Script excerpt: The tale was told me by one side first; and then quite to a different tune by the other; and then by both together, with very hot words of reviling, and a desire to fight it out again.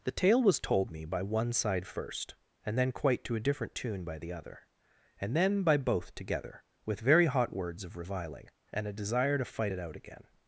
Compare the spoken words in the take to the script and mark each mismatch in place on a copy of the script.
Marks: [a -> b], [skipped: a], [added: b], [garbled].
The tale was told me by one side first; and then quite to a different tune by the other; and then by both together, with very hot words of reviling, and a desire to fight it out again.